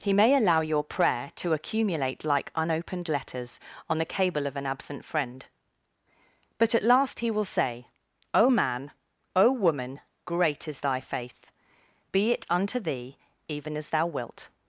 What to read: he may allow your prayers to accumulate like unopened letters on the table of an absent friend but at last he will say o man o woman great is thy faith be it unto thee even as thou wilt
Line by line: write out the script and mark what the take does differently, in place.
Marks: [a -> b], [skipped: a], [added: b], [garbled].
he may allow your [prayers -> prayer] to accumulate like unopened letters on the [table -> cable] of an absent friend but at last he will say o man o woman great is thy faith be it unto thee even as thou wilt